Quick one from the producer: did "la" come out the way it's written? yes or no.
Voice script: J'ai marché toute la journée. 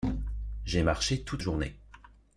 no